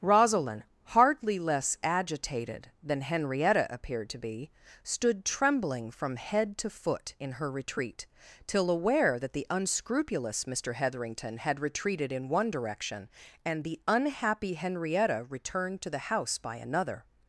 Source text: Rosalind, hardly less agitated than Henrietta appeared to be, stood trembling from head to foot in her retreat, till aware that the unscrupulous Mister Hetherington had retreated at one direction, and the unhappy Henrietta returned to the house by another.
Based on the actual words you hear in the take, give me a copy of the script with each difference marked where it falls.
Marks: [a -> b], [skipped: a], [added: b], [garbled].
Rosalind, hardly less agitated than Henrietta appeared to be, stood trembling from head to foot in her retreat, till aware that the unscrupulous Mister Hetherington had retreated [at -> in] one direction, and the unhappy Henrietta returned to the house by another.